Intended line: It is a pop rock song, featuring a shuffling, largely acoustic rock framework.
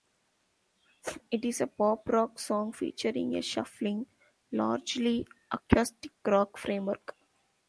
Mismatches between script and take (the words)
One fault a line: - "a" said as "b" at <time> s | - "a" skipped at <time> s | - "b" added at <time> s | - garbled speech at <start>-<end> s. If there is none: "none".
none